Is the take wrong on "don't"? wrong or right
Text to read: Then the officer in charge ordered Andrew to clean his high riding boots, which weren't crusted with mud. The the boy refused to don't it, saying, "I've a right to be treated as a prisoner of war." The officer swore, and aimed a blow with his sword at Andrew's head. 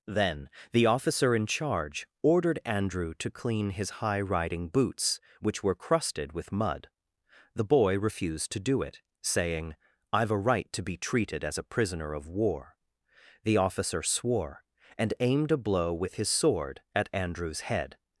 wrong